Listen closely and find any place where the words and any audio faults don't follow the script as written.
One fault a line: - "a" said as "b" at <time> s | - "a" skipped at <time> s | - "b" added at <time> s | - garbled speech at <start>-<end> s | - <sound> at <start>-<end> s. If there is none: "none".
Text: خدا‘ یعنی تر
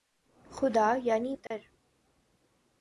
- dropout at 1.5-1.5 s